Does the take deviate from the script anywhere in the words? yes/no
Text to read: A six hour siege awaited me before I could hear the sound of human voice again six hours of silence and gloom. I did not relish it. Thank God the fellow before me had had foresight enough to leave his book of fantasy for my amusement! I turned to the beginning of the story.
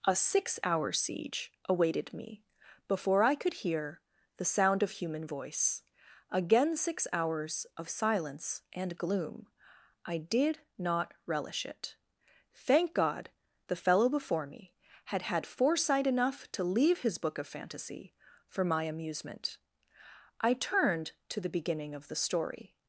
no